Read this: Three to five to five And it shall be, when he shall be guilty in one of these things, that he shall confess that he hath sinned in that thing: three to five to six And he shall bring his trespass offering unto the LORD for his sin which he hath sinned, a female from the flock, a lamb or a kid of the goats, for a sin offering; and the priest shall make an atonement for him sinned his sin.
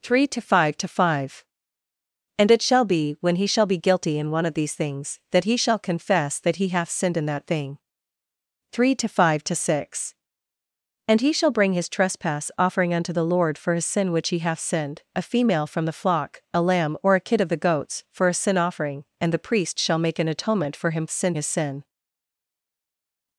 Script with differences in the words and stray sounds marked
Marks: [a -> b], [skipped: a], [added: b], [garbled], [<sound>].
Three to five to five And it shall be, when he shall be guilty in one of these things, that he shall confess that he hath sinned in that thing: three to five to six And he shall bring his trespass offering unto the LORD for his sin which he hath sinned, a female from the flock, a lamb or a kid of the goats, for a sin offering; and the priest shall make an atonement for him sinned his sin.